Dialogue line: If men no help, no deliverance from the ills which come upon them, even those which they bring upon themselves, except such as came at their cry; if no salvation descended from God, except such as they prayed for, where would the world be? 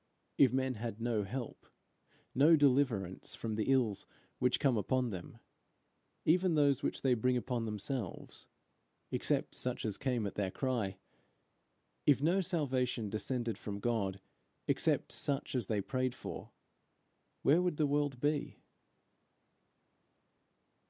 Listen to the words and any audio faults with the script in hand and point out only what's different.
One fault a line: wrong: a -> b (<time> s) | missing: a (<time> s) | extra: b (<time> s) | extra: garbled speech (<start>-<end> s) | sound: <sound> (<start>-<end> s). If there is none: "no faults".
extra: had (0.7 s)